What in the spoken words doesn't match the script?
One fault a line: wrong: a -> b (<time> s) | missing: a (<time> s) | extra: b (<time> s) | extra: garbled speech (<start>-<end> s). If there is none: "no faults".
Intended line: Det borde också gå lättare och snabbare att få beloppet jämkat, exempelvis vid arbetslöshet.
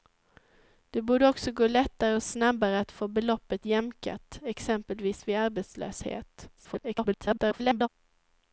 extra: garbled speech (6.6-7.9 s)